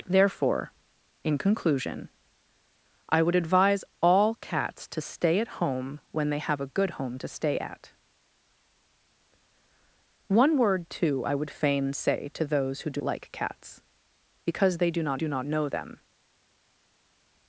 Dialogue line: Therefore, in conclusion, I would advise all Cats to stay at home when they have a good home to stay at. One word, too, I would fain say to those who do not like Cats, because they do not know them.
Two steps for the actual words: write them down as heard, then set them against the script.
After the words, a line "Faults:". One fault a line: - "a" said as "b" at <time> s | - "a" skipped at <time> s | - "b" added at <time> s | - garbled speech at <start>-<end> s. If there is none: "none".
Therefore, in conclusion, I would advise all Cats to stay at home when they have a good home to stay at. One word, too, I would fain say to those who do like Cats, because they do not do not know them.
Faults:
- "not" skipped at 13.0 s
- "do not" added at 15.1 s